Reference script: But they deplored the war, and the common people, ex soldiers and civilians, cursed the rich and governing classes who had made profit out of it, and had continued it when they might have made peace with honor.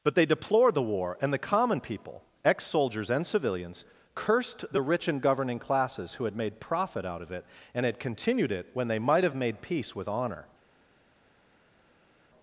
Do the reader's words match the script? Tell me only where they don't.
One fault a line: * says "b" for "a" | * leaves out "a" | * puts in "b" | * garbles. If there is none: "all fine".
all fine